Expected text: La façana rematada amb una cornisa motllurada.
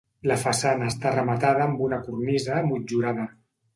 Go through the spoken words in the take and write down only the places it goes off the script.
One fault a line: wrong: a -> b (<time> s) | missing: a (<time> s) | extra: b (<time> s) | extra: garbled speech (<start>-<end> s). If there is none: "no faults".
extra: està (0.9 s)